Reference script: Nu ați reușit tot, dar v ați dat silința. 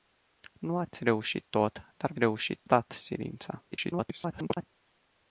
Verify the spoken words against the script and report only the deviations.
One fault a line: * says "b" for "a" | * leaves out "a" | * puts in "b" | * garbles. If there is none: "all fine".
* says "reușit" for "ați"
* garbles